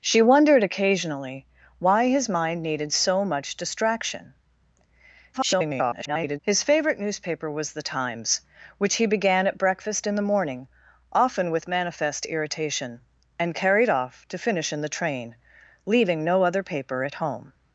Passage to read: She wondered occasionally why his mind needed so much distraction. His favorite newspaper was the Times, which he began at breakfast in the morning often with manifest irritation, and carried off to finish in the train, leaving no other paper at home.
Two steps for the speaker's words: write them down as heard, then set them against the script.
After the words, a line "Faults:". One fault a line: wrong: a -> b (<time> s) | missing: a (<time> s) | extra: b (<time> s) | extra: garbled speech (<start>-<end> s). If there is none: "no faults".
She wondered occasionally why his mind needed so much distraction. [garbled] His favorite newspaper was the Times, which he began at breakfast in the morning often with manifest irritation, and carried off to finish in the train, leaving no other paper at home.
Faults:
extra: garbled speech (5.3-6.4 s)